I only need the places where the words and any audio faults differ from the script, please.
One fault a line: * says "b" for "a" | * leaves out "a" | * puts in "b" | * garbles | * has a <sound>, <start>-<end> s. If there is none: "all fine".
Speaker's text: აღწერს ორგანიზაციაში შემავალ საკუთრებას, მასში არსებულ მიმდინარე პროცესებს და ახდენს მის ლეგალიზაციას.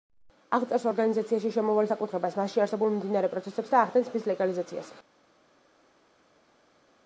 all fine